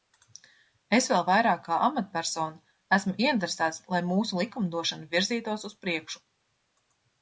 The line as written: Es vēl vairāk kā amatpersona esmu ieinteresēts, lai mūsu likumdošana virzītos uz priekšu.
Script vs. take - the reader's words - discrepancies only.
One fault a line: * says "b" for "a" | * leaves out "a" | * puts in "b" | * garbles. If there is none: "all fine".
all fine